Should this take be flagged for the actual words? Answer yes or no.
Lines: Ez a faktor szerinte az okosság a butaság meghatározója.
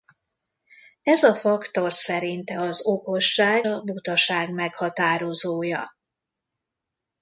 no